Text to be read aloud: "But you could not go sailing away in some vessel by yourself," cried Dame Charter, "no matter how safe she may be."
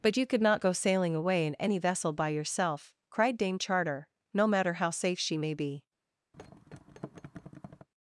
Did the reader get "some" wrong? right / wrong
wrong